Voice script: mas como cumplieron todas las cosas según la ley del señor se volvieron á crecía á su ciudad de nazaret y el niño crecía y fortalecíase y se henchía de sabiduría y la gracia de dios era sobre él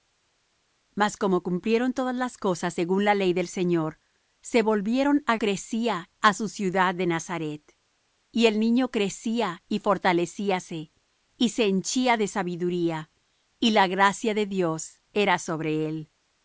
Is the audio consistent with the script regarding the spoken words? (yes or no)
yes